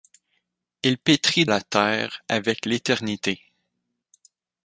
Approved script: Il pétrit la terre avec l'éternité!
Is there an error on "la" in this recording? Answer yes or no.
no